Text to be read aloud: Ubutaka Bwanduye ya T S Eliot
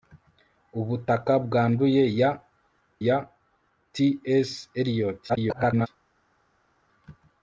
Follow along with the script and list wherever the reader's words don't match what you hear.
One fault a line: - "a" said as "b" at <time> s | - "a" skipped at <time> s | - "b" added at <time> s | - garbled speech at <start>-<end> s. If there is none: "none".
- "ya" added at 3.1 s
- garbled speech at 5.3-5.9 s